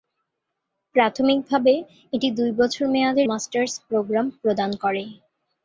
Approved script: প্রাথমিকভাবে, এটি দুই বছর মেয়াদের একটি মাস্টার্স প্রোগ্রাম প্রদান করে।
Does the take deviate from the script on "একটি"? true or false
true